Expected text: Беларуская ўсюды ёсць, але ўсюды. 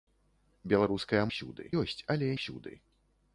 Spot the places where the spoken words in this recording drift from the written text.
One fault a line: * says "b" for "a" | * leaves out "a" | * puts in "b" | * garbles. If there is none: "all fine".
all fine